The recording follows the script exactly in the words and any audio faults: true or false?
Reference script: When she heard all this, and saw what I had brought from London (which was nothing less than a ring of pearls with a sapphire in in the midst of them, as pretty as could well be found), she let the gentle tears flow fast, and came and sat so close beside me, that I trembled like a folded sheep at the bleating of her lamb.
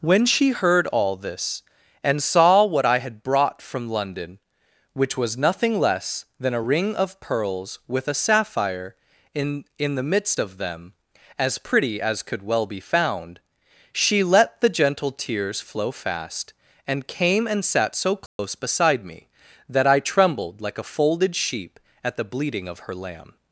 false